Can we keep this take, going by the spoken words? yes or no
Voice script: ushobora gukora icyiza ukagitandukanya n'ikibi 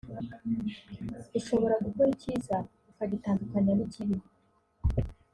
yes